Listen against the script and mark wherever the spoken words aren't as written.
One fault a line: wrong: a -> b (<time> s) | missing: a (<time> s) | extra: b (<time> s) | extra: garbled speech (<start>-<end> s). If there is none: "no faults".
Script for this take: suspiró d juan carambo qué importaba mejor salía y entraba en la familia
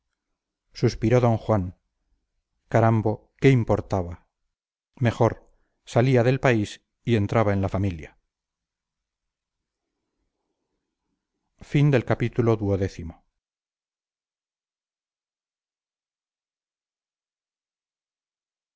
extra: del país (6.2 s)